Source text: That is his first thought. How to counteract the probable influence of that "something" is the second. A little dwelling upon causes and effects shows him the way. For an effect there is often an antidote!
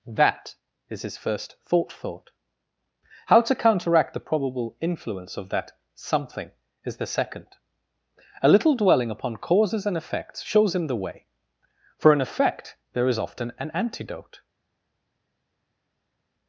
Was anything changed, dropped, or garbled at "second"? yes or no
no